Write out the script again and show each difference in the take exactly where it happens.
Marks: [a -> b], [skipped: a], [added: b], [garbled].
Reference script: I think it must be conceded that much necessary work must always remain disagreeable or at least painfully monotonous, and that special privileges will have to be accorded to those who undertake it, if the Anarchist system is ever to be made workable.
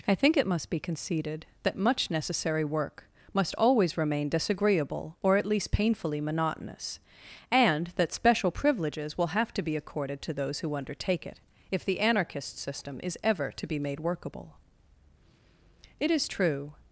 I think it must be conceded that much necessary work must always remain disagreeable or at least painfully monotonous, and that special privileges will have to be accorded to those who undertake it, if the Anarchist system is ever to be made workable. [added: It is true]